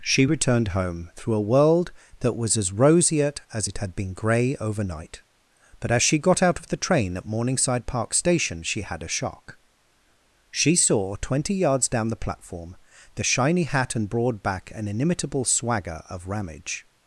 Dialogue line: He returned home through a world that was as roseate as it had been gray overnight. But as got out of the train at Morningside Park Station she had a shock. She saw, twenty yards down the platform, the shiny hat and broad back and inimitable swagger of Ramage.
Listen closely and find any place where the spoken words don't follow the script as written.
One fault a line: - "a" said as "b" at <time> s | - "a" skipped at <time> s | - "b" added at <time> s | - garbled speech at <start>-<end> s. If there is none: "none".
- "He" said as "She" at 0.0 s
- "she" added at 6.0 s